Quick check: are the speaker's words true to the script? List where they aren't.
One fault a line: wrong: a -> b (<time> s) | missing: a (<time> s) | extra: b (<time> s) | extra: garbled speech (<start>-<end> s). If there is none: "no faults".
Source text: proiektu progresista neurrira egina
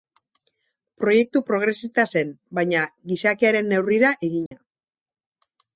extra: zen baina gizakiaren (2.1 s)